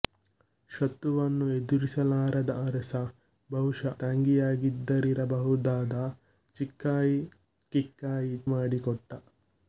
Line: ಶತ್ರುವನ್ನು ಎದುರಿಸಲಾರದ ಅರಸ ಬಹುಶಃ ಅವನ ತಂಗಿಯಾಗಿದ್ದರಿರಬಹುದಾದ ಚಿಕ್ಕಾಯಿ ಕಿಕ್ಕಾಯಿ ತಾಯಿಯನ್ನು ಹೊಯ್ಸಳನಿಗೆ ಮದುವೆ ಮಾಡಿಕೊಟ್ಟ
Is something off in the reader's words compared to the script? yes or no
yes